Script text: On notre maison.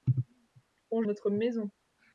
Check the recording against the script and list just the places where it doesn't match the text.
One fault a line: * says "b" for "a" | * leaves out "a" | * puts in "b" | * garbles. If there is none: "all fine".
all fine